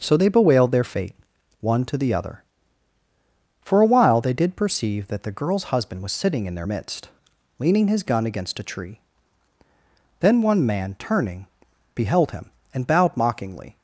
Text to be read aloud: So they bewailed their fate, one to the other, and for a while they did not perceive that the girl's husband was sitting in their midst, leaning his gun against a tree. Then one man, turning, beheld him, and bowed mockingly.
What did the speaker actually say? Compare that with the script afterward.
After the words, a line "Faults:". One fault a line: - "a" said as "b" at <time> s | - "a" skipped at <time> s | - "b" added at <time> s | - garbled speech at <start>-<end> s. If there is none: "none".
So they bewailed their fate, one to the other, for a while they did perceive that the girl's husband was sitting in their midst, leaning his gun against a tree. Then one man, turning, beheld him, and bowed mockingly.
Faults:
- "and" skipped at 2.4 s
- "not" skipped at 4.5 s